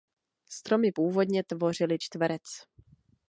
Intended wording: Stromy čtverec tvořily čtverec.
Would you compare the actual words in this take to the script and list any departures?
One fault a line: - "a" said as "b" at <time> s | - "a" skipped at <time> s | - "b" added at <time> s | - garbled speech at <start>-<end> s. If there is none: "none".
- "čtverec" said as "původně" at 0.9 s